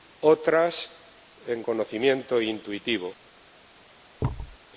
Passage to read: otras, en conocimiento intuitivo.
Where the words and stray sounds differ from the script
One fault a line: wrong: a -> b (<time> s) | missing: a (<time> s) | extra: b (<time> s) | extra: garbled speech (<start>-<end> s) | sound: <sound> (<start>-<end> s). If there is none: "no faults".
sound: thud (4.2-4.6 s)